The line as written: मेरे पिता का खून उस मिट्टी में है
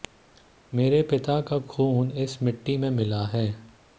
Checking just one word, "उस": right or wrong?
wrong